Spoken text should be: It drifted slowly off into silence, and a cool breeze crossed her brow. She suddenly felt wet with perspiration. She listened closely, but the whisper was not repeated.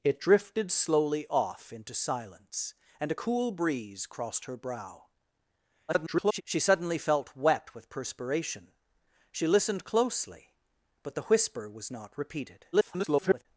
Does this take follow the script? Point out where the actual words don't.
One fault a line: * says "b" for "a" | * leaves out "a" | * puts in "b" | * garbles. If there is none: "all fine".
* garbles
* garbles